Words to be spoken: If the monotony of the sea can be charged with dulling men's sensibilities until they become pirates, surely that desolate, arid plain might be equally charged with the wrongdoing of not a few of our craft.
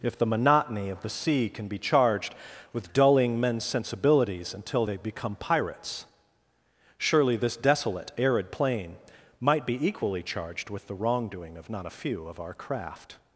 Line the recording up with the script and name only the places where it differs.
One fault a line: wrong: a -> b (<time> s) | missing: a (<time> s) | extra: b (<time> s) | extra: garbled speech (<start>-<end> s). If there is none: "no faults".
wrong: that -> this (7.3 s)